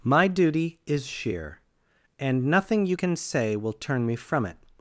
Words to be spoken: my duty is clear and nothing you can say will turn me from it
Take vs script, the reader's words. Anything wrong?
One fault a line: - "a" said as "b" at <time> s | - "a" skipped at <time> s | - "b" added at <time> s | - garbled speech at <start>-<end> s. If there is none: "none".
- "clear" said as "sheer" at 1.0 s